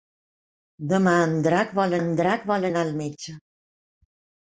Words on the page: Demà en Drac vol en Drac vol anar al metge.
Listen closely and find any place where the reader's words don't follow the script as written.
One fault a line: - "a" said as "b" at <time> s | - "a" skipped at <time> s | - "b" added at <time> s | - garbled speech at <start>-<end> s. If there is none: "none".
none